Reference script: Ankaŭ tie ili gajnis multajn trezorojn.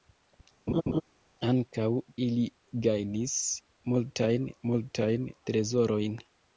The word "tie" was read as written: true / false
false